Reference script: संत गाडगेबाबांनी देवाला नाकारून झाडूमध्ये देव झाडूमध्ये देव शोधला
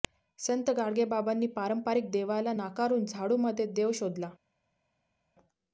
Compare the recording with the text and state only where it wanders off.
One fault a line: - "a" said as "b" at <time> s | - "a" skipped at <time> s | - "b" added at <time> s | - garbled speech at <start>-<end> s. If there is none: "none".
- "पारंपरिक" added at 1.5 s
- "झाडूमध्ये देव" skipped at 3.9 s